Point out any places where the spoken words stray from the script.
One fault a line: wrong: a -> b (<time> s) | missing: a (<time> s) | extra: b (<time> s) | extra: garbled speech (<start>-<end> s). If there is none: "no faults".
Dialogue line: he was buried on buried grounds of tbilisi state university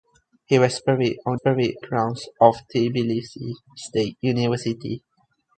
no faults